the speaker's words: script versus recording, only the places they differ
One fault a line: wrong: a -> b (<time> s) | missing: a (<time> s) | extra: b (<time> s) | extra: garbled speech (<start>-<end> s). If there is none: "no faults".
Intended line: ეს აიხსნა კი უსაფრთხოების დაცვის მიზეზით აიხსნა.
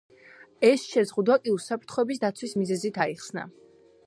wrong: აიხსნა -> შეზღუდვა (0.9 s)